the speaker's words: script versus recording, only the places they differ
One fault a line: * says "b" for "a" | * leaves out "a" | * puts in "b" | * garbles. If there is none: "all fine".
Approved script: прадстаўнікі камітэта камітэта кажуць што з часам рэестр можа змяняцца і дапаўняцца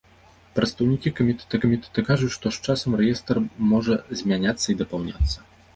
all fine